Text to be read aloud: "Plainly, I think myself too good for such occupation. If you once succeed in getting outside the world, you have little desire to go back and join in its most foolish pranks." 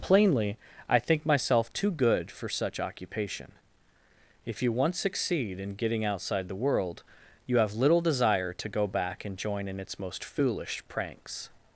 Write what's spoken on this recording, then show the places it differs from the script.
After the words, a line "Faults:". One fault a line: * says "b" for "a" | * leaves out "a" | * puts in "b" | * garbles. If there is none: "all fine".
"Plainly, I think myself too good for such occupation. If you once succeed in getting outside the world, you have little desire to go back and join in its most foolish pranks."
Faults:
all fine